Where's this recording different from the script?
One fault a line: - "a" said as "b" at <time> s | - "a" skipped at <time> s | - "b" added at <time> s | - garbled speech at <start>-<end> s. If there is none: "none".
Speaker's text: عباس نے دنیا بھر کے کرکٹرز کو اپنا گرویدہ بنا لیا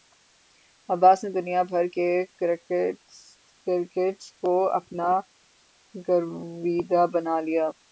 none